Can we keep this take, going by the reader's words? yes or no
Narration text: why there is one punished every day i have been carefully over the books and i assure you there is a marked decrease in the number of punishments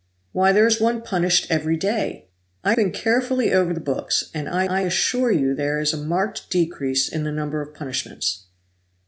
no